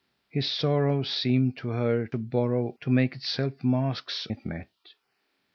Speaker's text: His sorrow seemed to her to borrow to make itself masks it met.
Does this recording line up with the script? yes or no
yes